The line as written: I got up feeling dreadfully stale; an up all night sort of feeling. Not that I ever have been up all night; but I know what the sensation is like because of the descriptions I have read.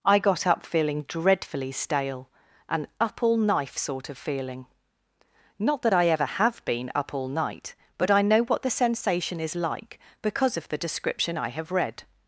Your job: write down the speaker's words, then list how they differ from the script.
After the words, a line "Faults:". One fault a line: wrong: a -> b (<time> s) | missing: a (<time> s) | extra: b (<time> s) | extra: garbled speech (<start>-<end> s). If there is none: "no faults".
I got up feeling dreadfully stale; an up all knife sort of feeling. Not that I ever have been up all night; but I know what the sensation is like because of the description I have read.
Faults:
wrong: night -> knife (3.4 s)
wrong: descriptions -> description (10.8 s)